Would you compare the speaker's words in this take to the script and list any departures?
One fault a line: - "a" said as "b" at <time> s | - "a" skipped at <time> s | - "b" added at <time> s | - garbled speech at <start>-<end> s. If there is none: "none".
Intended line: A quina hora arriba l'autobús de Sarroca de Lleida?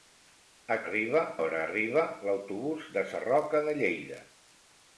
- "quina" said as "arriba" at 0.8 s